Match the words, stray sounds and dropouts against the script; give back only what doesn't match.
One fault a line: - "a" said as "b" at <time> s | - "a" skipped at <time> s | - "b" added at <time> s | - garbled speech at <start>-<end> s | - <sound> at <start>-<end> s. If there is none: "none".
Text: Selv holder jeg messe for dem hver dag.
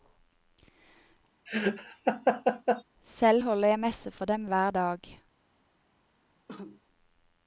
- laugh at 1.5-2.8 s
- cough at 6.5-6.8 s